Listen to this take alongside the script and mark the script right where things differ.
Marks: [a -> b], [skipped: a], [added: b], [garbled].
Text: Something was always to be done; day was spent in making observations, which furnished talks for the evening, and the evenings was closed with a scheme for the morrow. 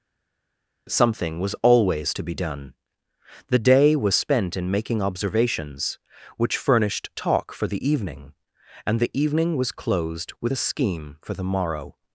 Something was always to be done; [added: the] day was spent in making observations, which furnished [talks -> talk] for the evening, and the [evenings -> evening] was closed with a scheme for the morrow.